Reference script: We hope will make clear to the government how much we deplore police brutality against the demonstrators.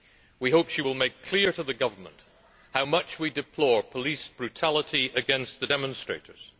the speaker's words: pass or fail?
fail